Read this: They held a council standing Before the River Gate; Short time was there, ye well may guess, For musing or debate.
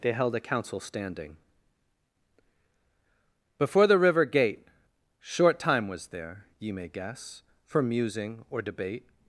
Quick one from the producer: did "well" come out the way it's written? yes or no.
no